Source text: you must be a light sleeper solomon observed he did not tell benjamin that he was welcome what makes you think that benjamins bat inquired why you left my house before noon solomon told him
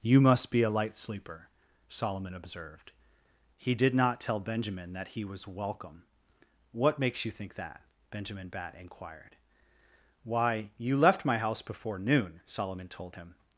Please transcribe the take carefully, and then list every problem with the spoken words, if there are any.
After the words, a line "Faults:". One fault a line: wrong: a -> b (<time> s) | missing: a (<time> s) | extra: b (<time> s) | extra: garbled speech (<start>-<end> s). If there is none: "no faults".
you must be a light sleeper solomon observed he did not tell benjamin that he was welcome what makes you think that benjamin bat inquired why you left my house before noon solomon told him
Faults:
wrong: benjamins -> benjamin (8.1 s)